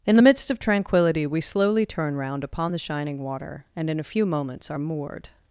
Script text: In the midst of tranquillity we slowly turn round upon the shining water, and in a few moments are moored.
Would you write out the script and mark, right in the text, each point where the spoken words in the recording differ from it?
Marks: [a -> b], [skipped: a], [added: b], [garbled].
In the midst of tranquillity we slowly turn round upon the shining water, and in a few moments are moored.